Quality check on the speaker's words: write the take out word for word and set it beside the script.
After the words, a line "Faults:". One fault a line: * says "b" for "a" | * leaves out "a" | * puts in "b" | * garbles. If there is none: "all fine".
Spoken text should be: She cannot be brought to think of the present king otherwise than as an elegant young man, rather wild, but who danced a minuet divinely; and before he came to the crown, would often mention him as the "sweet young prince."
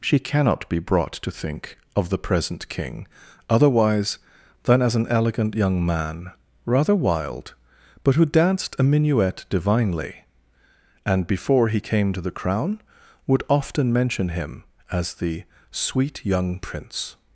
She cannot be brought to think of the present king otherwise than as an elegant young man, rather wild, but who danced a minuet divinely; and before he came to the crown, would often mention him as the "sweet young prince."
Faults:
all fine